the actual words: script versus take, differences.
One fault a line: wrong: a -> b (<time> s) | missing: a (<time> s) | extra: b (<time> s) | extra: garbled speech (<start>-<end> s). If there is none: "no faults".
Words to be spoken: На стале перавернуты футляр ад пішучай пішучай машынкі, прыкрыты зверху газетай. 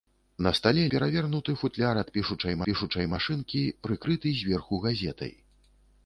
no faults